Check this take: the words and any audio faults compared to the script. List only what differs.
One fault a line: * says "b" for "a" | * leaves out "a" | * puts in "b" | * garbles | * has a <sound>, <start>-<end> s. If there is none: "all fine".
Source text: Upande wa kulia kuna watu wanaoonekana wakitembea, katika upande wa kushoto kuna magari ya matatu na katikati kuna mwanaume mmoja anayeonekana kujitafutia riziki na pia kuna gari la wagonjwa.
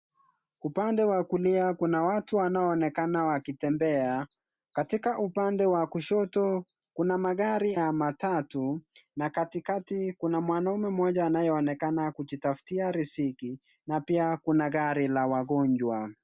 all fine